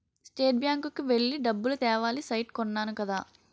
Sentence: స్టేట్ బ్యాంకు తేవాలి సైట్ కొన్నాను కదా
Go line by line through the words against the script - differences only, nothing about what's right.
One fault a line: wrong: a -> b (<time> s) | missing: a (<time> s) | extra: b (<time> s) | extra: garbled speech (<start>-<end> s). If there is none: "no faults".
extra: కి వెళ్లి డబ్బులు (0.9 s)